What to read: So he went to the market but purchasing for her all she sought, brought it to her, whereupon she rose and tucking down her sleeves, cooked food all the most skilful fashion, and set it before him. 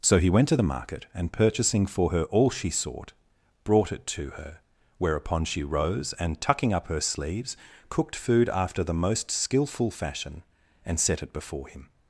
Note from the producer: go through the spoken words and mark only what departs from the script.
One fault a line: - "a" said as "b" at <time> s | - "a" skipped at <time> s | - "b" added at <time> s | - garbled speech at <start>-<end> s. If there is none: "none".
- "but" said as "and" at 1.1 s
- "down" said as "up" at 6.7 s
- "all" said as "after" at 8.5 s